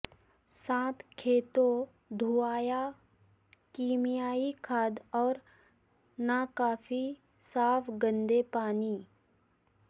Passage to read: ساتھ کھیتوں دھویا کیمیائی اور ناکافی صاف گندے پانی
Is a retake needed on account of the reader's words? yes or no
yes